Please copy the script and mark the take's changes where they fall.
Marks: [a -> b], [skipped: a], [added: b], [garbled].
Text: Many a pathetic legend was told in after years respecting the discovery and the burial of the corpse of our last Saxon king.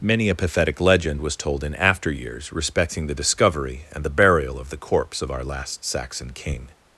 Many a pathetic legend was told in after years respecting the discovery and the burial of the corpse of our last Saxon king.